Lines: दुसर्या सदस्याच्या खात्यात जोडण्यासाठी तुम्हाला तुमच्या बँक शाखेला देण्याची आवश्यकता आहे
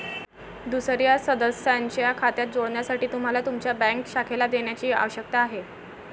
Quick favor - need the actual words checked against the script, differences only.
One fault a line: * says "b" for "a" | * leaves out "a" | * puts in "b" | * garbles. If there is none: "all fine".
all fine